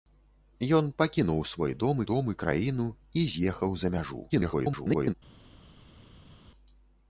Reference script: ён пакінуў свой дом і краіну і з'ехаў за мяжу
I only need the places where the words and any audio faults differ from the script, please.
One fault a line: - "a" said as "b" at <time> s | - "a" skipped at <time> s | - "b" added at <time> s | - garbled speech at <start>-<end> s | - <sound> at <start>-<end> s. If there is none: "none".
- "дом" added at 2.1 s
- garbled speech at 4.3-5.1 s